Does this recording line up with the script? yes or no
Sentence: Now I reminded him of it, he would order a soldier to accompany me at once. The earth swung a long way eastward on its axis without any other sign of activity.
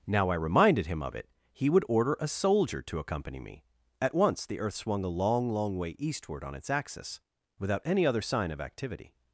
no